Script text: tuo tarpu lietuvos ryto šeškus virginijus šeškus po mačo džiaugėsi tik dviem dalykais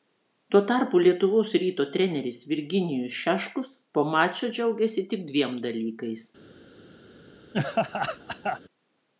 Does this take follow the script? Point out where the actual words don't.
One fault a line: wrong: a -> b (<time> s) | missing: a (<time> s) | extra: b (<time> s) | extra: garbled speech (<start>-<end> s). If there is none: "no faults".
wrong: šeškus -> treneris (1.9 s)